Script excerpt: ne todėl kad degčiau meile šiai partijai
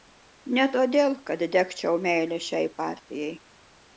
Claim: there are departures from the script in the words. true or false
false